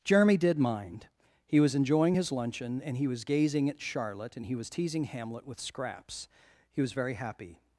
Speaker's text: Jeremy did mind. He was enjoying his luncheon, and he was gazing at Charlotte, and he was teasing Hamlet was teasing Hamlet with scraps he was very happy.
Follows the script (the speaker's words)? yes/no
no